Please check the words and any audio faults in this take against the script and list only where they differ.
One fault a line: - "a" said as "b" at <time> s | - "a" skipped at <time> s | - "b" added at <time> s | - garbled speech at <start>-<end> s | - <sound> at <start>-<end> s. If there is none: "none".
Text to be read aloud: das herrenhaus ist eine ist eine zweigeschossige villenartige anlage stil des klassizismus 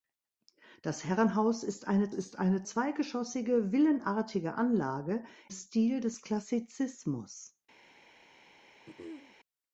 - throat clearing at 8.9-9.4 s